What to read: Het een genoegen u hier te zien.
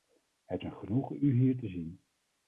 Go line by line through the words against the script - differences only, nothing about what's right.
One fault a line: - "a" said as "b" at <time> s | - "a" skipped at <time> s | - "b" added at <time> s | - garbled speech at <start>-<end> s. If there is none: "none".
none